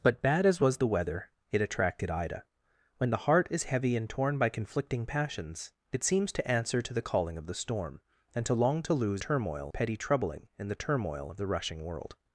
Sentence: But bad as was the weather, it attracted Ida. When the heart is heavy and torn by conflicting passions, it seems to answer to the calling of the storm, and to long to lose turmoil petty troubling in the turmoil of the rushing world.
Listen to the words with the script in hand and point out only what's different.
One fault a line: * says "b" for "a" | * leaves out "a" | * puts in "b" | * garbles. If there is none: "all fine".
all fine